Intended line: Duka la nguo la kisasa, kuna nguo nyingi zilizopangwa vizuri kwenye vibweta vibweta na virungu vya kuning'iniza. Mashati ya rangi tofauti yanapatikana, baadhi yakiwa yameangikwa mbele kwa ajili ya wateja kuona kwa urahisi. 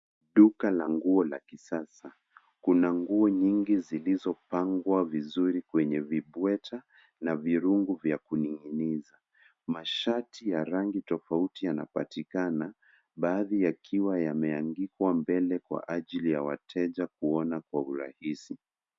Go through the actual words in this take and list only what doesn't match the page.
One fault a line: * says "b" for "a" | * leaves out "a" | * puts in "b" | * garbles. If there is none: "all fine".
* leaves out "vibweta"